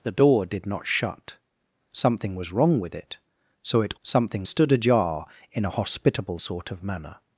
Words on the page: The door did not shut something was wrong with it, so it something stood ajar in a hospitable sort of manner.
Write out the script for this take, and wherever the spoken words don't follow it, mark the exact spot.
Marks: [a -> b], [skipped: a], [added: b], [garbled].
The door did not shut something was wrong with it, so it something stood ajar in a hospitable sort of manner.